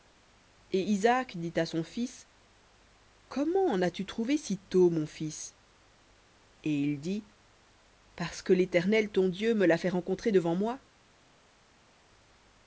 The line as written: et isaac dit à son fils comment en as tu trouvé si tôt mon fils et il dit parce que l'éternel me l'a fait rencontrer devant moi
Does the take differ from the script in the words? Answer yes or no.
yes